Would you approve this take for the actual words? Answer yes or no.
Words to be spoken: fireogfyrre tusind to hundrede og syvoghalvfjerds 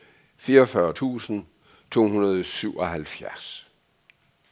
yes